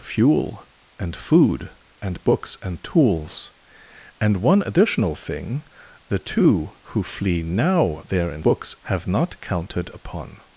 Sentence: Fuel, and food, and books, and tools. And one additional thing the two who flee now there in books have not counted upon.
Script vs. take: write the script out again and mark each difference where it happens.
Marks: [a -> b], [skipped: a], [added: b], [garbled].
Fuel, and food, and books, and tools. And one additional thing the two who flee now there in books have not counted upon.